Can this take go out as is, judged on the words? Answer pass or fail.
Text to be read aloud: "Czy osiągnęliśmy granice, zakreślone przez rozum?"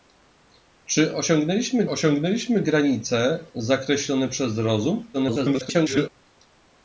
fail